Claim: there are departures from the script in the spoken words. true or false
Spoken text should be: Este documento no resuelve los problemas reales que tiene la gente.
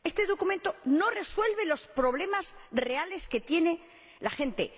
false